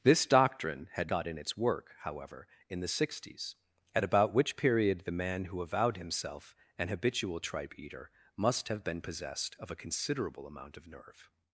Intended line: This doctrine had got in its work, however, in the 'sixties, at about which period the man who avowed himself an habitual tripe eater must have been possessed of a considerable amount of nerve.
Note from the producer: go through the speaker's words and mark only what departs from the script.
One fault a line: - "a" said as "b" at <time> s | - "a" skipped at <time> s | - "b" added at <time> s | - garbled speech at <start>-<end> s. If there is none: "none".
none